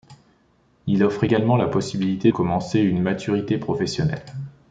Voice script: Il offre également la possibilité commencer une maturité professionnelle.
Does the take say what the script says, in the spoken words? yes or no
yes